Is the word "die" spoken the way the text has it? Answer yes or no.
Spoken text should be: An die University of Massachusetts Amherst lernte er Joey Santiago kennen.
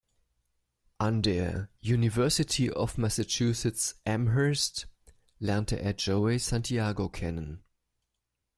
no